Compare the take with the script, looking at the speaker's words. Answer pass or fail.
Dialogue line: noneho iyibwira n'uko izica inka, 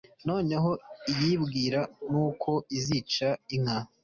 pass